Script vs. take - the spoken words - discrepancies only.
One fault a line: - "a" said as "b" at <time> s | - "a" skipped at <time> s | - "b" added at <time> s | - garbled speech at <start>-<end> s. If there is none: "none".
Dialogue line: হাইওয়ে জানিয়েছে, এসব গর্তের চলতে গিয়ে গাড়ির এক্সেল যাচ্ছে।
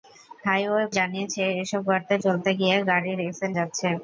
none